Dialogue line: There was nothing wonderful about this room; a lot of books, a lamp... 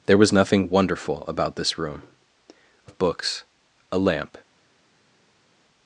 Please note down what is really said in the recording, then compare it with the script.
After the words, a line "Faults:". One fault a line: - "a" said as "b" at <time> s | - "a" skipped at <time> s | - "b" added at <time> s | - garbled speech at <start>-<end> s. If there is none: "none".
There was nothing wonderful about this room; a of books, a lamp...
Faults:
- "lot" skipped at 2.9 s